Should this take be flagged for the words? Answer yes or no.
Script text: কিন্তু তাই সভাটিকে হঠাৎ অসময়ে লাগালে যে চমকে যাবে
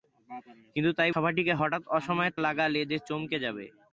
no